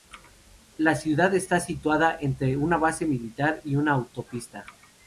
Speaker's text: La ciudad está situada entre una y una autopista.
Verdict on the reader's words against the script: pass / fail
fail